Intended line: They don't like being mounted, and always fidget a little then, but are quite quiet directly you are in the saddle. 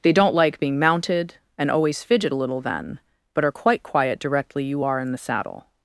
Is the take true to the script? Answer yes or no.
yes